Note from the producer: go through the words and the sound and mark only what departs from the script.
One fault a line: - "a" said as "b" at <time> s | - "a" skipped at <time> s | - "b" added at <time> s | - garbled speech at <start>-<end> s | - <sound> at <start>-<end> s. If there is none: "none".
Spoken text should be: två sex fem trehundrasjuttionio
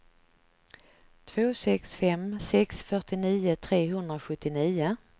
- "sex fyrtionio" added at 2.4 s